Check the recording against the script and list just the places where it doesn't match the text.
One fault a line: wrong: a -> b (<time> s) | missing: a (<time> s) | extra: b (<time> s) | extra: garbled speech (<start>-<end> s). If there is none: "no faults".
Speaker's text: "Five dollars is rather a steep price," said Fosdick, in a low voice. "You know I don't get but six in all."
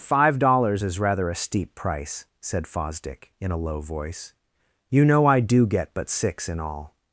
wrong: don't -> do (5.4 s)